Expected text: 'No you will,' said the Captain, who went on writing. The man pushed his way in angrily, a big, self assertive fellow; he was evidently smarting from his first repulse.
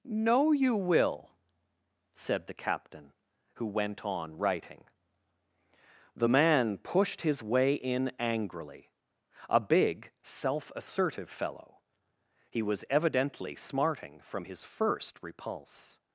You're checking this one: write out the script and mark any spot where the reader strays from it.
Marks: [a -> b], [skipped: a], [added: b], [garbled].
'No you will,' said the Captain, who went on writing. The man pushed his way in angrily, a big, self assertive fellow; he was evidently smarting from his first repulse.